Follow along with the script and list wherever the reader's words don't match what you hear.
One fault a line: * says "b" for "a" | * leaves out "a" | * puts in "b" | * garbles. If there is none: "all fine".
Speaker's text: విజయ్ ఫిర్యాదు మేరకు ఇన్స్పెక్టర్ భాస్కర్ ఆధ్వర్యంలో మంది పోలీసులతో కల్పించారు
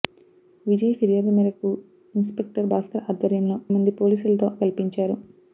all fine